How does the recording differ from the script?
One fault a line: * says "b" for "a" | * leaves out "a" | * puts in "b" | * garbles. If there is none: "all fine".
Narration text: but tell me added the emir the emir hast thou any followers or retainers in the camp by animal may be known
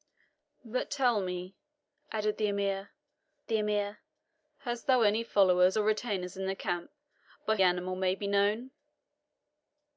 all fine